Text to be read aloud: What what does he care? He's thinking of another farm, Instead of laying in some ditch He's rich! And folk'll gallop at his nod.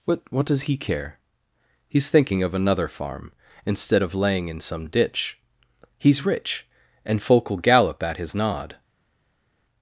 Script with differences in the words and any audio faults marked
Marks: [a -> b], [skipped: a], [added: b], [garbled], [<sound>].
What what does he care? He's thinking of another farm, Instead of laying in some ditch He's rich! And folk'll gallop at his nod.